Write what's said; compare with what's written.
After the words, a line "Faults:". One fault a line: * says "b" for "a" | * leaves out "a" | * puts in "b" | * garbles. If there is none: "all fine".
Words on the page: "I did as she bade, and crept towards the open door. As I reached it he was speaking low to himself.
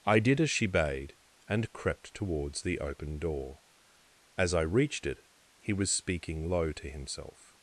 "I did as she bade, and crept towards the open door. As I reached it he was speaking low to himself.
Faults:
all fine